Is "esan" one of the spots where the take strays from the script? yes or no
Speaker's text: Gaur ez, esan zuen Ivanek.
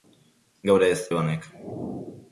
yes